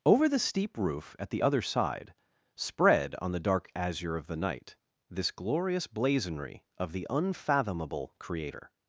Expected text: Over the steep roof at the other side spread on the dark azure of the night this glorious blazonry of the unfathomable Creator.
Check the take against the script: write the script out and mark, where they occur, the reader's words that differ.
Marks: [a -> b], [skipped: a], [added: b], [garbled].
Over the steep roof at the other side spread on the dark azure of the night this glorious blazonry of the unfathomable Creator.